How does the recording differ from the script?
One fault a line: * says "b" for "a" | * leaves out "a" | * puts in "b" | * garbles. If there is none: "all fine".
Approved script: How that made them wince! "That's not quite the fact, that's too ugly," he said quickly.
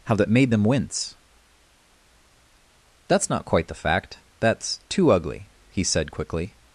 all fine